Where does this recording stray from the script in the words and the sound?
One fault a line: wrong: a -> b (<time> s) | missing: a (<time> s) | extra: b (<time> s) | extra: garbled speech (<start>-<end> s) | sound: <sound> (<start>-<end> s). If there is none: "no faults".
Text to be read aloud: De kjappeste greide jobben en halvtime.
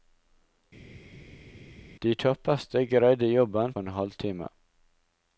no faults